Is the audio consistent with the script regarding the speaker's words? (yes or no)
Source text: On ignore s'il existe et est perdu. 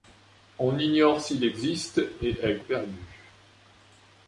yes